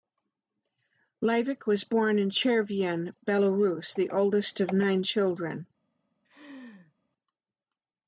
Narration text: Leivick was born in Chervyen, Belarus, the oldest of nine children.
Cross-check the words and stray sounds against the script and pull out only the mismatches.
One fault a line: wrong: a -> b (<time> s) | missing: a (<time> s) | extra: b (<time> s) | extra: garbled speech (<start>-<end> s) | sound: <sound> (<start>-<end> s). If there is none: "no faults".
sound: laugh (6.2-6.9 s)